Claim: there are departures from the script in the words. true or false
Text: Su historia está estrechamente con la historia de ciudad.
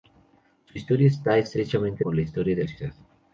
false